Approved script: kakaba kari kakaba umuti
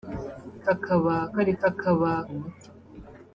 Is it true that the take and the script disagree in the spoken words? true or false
false